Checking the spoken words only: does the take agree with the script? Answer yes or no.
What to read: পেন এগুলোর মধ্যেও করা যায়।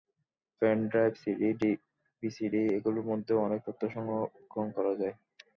no